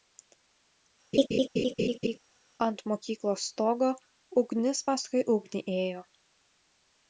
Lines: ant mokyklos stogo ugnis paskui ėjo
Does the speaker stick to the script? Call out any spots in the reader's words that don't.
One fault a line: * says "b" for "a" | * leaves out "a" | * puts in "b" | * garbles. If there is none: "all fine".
* puts in "ugnį"